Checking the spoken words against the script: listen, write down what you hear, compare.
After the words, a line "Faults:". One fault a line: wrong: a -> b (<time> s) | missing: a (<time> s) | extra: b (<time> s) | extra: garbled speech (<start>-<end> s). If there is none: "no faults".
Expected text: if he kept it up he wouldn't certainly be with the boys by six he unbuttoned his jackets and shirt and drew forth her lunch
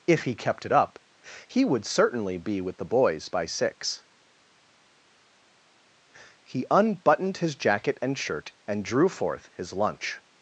if he kept it up he would certainly be with the boys by six he unbuttoned his jacket and shirt and drew forth his lunch
Faults:
wrong: wouldn't -> would (1.6 s)
wrong: jackets -> jacket (7.6 s)
wrong: her -> his (9.5 s)